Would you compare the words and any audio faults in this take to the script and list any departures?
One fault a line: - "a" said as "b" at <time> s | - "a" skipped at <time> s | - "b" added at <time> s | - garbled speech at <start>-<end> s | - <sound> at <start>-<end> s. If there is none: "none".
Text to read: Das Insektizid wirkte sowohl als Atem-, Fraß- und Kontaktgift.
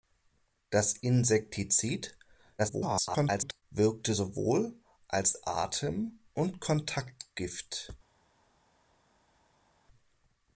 - garbled speech at 2.6-3.6 s
- "Fraß" skipped at 6.2 s